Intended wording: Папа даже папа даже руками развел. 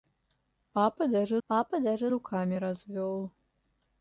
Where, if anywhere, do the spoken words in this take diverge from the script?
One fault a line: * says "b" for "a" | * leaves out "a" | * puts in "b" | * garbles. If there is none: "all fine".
all fine